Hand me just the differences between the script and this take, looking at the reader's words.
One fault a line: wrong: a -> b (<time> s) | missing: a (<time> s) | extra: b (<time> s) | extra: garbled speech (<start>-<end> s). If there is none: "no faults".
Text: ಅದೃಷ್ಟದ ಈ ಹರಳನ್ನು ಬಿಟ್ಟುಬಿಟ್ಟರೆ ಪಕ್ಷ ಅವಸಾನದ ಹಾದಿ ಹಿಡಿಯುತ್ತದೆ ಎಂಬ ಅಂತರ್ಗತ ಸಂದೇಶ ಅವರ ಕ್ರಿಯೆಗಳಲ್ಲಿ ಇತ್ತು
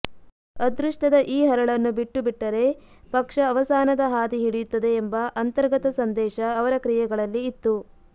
no faults